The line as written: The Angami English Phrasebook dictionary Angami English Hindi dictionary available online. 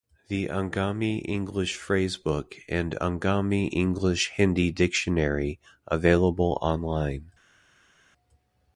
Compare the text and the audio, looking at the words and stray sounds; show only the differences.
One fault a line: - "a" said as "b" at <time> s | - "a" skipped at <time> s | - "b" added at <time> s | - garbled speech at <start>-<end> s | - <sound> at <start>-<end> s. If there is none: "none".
- "dictionary" said as "and" at 2.7 s